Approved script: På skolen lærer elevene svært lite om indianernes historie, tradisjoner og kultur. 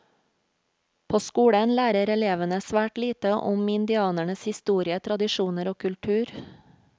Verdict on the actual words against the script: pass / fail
pass